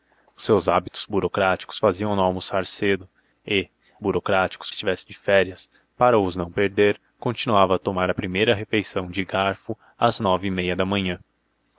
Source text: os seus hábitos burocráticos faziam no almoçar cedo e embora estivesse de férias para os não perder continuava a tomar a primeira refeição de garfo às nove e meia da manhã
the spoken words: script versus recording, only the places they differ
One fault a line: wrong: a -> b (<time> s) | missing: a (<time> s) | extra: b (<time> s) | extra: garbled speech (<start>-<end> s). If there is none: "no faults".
wrong: embora -> burocráticos (4.0 s)